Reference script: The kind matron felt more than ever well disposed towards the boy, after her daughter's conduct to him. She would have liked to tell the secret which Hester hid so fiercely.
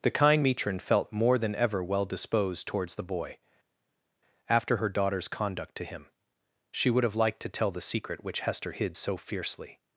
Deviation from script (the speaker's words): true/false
false